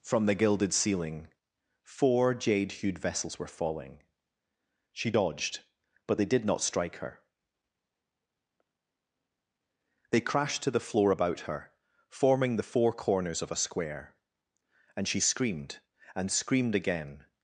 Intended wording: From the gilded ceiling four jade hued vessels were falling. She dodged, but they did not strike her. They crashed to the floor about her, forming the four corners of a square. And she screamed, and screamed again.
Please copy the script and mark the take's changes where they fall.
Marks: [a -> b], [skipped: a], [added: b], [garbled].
From the gilded ceiling four jade hued vessels were falling. She dodged, but they did not strike her. They crashed to the floor about her, forming the four corners of a square. And she screamed, and screamed again.